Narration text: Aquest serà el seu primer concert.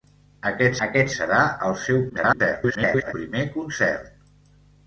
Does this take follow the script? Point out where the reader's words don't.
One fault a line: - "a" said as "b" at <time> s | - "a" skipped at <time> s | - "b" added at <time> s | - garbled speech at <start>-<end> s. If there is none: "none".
- "aquest" added at 0.9 s
- garbled speech at 2.1-3.1 s